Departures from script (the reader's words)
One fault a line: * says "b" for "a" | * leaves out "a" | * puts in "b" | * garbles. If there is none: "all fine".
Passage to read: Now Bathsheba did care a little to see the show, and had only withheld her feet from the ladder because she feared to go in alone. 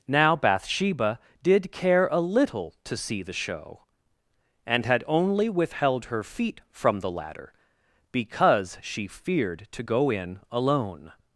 all fine